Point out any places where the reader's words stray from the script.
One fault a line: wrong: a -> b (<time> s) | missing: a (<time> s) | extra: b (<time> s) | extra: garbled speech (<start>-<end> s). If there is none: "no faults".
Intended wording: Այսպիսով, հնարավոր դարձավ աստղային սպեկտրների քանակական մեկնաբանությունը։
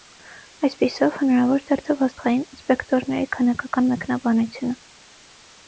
no faults